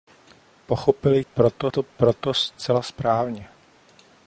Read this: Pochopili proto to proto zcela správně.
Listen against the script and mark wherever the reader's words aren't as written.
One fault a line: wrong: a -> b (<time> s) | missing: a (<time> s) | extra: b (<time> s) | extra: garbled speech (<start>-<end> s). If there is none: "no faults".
no faults